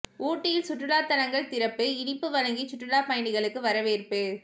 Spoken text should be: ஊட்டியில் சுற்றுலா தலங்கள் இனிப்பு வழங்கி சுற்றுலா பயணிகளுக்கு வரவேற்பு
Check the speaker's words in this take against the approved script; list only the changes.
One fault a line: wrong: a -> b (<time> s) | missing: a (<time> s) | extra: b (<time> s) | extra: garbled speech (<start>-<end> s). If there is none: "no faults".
extra: திறப்பு (1.5 s)